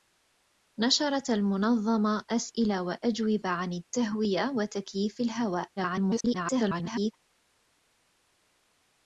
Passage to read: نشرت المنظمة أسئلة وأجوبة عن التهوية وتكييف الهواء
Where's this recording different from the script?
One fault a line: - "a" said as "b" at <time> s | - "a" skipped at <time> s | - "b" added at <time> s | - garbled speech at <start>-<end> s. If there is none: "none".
- garbled speech at 5.8-7.1 s